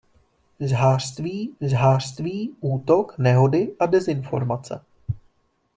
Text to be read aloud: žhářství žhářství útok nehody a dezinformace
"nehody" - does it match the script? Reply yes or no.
yes